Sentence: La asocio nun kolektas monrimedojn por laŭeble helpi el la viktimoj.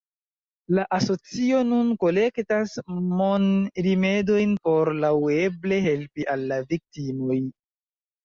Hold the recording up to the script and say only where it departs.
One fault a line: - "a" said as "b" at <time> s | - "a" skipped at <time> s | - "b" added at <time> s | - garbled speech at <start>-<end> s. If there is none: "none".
- "el" said as "al" at 6.3 s